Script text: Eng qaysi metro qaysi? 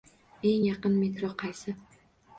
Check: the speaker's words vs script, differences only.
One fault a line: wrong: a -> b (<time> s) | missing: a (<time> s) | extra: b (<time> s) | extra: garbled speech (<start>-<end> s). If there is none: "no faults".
wrong: qaysi -> yaqin (0.7 s)